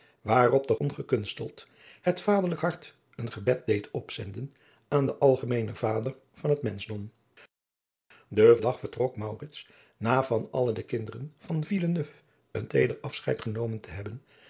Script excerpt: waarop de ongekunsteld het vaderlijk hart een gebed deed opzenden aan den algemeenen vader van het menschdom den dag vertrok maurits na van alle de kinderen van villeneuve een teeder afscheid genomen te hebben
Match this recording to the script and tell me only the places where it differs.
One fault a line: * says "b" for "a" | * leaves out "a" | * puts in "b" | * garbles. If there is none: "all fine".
all fine